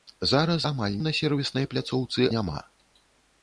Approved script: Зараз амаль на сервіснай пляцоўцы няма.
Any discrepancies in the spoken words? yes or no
no